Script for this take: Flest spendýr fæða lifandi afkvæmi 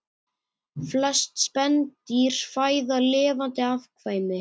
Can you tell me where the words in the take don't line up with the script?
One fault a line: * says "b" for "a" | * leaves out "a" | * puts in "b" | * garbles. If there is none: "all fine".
all fine